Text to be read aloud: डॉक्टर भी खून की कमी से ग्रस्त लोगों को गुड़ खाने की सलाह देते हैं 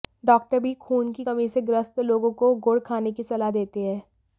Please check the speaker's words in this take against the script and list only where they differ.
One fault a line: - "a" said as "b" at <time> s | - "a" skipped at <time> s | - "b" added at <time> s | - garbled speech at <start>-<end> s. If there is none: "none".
none